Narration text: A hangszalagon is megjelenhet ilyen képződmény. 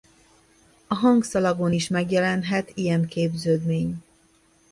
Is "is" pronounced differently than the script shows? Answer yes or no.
no